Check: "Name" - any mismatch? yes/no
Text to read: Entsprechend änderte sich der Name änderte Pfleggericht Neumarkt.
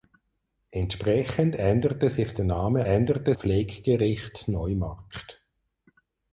no